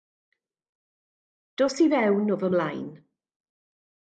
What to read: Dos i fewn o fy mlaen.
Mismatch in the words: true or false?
false